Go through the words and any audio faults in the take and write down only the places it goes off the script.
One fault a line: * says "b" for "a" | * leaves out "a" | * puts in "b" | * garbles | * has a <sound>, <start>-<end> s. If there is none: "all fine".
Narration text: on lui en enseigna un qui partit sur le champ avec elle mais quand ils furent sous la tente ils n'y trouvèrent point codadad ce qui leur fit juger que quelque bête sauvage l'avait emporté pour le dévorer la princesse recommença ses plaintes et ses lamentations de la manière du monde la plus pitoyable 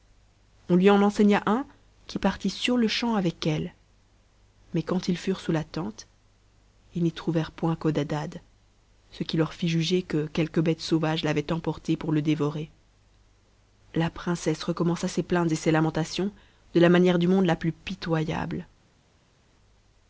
all fine